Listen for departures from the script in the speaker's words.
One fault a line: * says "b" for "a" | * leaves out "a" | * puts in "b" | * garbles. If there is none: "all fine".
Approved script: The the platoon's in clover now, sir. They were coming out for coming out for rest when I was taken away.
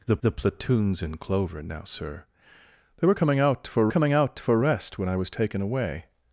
all fine